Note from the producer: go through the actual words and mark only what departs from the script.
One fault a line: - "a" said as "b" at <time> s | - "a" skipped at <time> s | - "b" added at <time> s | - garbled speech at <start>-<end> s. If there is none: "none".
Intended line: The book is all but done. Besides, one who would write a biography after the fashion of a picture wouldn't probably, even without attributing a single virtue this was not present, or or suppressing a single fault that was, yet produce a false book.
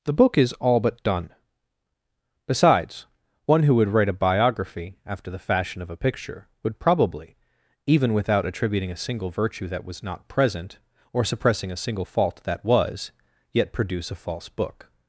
- "wouldn't" said as "would" at 6.6 s
- "this" said as "that" at 9.7 s
- "or" skipped at 11.3 s